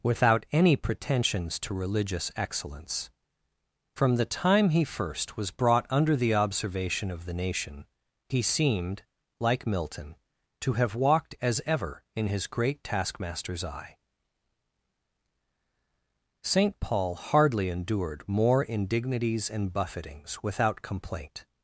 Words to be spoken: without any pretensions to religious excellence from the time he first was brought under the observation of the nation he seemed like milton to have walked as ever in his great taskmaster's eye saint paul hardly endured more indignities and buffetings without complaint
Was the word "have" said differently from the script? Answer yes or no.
no